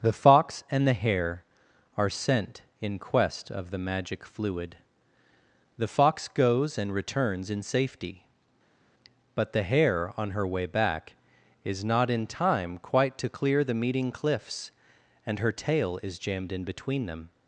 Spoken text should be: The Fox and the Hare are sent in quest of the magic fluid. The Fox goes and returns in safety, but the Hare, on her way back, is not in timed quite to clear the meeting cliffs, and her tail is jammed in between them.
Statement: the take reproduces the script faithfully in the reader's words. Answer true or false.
false